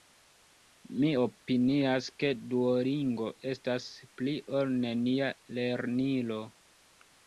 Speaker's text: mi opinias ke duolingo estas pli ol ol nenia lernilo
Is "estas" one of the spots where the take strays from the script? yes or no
no